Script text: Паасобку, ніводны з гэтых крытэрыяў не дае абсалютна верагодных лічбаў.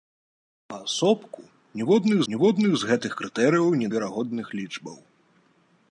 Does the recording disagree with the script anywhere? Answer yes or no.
yes